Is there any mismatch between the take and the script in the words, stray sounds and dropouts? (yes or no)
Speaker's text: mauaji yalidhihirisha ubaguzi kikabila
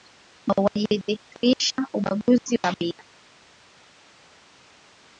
no